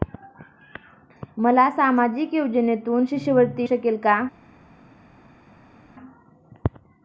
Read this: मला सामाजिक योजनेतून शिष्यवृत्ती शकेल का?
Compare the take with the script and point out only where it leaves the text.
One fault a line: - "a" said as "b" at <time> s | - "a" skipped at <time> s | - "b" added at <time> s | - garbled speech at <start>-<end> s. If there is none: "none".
none